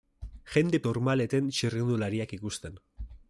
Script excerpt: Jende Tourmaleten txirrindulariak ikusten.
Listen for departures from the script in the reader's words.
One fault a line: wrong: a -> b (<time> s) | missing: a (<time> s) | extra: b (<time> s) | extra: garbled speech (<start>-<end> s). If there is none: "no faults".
no faults